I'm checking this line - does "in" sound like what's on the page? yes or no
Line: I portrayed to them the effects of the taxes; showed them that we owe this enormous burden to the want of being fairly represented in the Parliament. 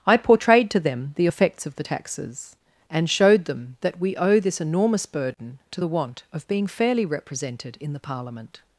yes